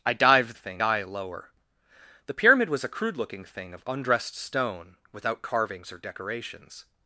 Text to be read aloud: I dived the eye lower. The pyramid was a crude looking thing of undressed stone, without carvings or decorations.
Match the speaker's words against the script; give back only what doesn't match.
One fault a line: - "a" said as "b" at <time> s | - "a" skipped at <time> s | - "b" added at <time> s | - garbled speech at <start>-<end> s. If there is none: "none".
- "the" said as "thing" at 0.5 s